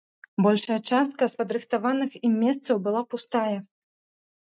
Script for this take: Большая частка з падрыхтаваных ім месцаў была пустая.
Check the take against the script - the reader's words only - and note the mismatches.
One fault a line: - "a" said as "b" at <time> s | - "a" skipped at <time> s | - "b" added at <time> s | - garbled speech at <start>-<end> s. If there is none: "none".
none